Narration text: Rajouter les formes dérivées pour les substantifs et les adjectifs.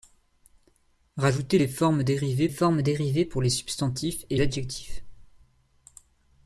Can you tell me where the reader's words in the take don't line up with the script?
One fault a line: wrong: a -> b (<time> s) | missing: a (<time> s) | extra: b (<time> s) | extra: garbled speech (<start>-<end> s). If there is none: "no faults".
extra: formes dérivées (2.5 s)
missing: les (4.4 s)